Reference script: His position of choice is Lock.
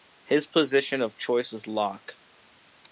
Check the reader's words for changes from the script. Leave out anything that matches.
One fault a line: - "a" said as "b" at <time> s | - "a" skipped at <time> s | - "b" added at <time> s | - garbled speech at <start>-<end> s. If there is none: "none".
none